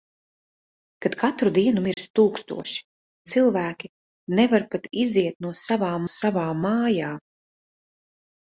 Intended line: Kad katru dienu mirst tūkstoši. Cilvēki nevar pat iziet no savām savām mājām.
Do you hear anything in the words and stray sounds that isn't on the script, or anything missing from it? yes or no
yes